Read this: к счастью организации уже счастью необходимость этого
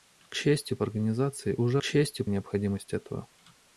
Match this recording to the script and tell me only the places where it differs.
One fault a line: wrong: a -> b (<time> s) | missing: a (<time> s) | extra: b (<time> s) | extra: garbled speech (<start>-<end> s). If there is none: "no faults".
no faults